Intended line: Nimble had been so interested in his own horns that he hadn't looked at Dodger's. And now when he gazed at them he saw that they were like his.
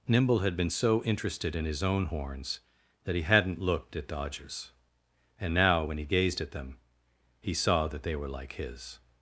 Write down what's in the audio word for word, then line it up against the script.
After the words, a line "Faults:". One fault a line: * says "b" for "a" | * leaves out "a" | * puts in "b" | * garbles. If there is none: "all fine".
Nimble had been so interested in his own horns that he hadn't looked at Dodger's. And now when he gazed at them he saw that they were like his.
Faults:
all fine